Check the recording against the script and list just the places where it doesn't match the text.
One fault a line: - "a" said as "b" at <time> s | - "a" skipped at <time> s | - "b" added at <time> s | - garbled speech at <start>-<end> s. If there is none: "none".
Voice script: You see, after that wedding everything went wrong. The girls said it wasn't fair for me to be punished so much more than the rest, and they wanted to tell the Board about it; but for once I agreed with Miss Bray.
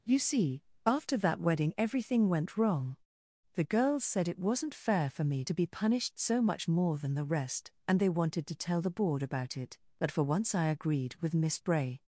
none